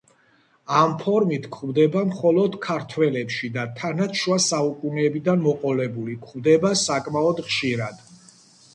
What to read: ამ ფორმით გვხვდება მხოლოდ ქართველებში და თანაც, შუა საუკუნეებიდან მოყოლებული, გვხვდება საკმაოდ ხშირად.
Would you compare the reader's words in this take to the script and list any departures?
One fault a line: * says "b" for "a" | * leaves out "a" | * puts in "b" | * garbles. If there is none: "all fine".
all fine